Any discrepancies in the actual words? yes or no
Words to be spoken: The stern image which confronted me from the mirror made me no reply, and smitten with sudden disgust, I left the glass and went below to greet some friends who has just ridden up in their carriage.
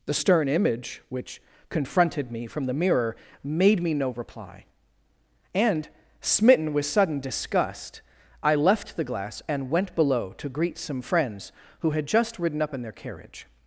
yes